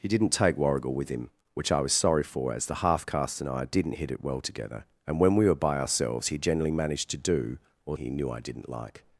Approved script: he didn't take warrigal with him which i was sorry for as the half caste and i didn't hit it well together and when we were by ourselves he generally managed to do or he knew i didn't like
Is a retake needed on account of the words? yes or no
no